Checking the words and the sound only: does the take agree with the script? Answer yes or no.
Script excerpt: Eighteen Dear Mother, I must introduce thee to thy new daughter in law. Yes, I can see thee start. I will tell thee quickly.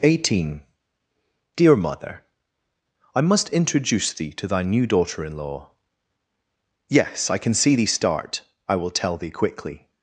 yes